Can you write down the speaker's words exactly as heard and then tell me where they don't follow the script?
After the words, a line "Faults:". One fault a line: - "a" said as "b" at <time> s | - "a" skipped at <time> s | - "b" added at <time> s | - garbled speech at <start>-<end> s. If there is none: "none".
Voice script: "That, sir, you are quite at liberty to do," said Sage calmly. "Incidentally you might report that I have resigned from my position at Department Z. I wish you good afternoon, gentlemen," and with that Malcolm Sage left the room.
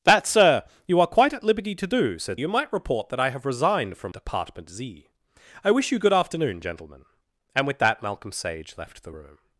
"That, sir, you are quite at liberty to do," said You might report that I have resigned from Department Z. I wish you good afternoon, gentlemen," and with that Malcolm Sage left the room.
Faults:
- "Sage calmly Incidentally" skipped at 2.4 s
- "my position at" skipped at 4.1 s